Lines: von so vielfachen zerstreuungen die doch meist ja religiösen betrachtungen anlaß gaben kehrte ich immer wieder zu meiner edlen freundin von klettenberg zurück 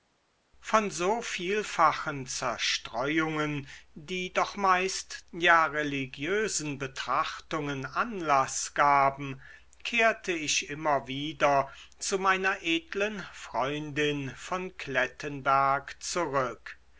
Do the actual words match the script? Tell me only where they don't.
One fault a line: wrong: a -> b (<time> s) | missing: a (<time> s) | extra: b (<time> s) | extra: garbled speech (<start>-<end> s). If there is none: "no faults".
no faults